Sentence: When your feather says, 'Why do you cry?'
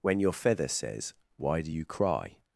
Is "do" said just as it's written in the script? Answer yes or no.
yes